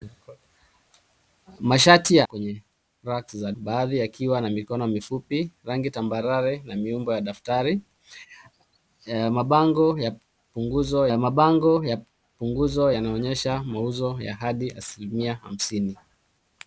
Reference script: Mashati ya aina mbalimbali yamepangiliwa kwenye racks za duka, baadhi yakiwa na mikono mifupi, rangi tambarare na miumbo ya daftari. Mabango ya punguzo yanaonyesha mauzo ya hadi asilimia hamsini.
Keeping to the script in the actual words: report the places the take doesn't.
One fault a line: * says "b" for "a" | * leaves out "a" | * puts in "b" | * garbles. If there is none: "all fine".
* leaves out "aina mbalimbali yamepangiliwa"
* leaves out "duka"
* puts in "mabango ya punguzo"